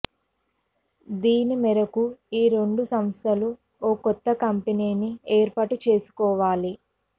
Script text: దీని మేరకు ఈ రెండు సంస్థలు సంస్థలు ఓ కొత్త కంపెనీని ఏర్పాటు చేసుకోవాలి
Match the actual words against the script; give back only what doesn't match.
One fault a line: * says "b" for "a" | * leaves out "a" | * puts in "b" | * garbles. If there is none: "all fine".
* leaves out "సంస్థలు"